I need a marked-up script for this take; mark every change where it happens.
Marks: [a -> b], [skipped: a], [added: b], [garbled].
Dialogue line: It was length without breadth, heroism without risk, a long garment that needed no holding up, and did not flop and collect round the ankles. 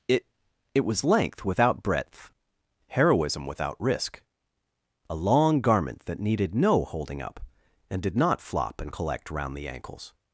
It [added: it] was length without breadth, heroism without risk, a long garment that needed no holding up, and did not flop and collect round the ankles.